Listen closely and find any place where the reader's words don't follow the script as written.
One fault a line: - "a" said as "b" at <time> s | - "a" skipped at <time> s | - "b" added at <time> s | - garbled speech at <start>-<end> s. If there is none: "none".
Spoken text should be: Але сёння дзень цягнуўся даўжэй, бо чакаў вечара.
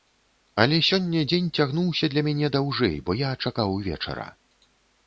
- "для мяне" added at 2.1 s
- "я" added at 3.2 s